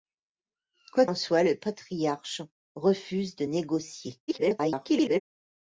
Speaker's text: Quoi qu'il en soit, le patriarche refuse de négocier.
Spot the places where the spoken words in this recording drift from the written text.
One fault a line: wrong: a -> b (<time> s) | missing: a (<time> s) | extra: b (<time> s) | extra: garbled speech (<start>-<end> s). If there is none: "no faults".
missing: qu'il (1.1 s)
extra: garbled speech (4.3-5.2 s)